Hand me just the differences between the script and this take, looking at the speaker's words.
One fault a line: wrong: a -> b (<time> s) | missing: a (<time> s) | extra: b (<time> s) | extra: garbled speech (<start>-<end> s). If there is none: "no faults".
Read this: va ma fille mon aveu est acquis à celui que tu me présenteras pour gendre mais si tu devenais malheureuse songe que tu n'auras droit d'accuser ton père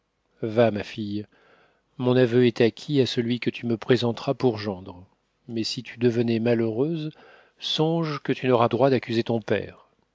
no faults